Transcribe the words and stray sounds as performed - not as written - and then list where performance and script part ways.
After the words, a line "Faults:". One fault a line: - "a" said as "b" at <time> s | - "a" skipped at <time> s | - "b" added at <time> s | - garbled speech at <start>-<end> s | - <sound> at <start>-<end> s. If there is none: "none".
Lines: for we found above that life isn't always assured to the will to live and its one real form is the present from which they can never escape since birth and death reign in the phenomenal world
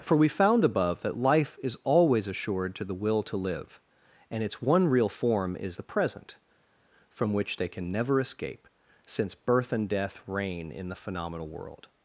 for we found above that life is always assured to the will to live and its one real form is the present from which they can never escape since birth and death reign in the phenomenal world
Faults:
- "isn't" said as "is" at 1.6 s